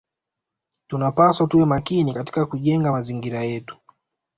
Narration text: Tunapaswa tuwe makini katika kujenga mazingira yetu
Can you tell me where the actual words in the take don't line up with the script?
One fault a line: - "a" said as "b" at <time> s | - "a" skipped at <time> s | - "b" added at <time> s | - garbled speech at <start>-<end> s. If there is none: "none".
none